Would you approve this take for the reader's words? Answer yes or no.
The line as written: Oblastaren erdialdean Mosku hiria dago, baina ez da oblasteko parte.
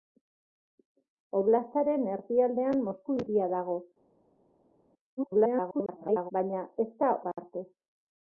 no